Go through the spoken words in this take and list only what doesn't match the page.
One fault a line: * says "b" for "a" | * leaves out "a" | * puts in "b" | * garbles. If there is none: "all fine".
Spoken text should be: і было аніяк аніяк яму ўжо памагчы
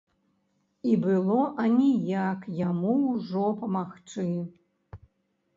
* leaves out "аніяк"